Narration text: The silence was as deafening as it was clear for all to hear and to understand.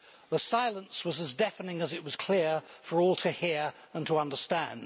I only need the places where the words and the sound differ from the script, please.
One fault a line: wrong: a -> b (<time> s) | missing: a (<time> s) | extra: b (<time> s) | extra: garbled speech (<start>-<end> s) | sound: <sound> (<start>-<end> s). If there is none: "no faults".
no faults